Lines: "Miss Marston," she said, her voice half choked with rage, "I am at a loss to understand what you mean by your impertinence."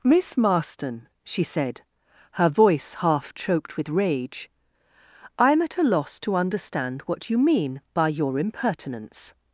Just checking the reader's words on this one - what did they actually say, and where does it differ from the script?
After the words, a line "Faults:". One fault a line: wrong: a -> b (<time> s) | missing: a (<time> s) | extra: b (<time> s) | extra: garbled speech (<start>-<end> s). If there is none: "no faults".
"Miss Marston," she said, her voice half choked with rage, "I am at a loss to understand what you mean by your impertinence."
Faults:
no faults